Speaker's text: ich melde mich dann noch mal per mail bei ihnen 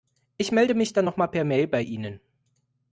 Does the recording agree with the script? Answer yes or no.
yes